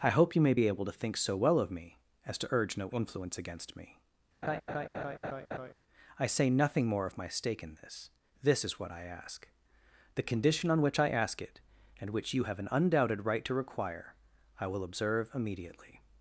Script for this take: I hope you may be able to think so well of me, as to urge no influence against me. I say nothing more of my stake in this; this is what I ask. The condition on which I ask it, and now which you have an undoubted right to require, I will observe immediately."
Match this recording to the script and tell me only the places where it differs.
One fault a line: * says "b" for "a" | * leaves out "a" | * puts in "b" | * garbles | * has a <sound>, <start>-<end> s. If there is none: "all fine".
* has a laugh, 4.4-5.7 s
* leaves out "now"